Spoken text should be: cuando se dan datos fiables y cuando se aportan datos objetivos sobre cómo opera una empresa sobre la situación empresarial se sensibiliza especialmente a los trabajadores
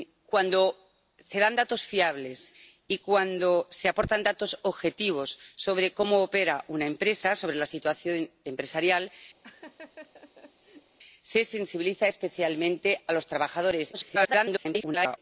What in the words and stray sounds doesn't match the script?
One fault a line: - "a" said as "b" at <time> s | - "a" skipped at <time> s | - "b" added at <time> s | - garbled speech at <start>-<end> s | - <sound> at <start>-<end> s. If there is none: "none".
- laugh at 9.4-11.0 s
- garbled speech at 13.9-15.2 s